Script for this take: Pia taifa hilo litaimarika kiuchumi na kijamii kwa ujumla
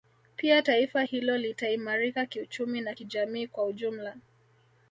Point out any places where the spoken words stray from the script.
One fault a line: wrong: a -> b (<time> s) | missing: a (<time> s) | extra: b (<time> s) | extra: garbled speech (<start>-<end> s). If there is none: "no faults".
no faults